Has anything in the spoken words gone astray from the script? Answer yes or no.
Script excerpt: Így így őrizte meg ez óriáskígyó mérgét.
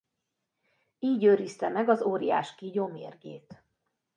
yes